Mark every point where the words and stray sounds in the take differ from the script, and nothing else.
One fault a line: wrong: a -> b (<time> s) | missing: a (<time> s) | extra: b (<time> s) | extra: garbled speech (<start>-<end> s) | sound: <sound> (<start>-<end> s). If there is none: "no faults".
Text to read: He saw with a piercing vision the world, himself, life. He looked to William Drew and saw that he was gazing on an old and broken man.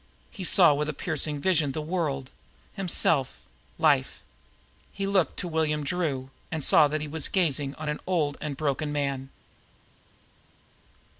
no faults